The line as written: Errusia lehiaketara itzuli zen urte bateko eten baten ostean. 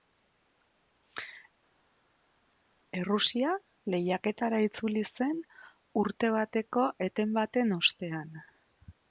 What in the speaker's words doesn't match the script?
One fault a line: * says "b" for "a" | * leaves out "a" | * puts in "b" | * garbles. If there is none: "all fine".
all fine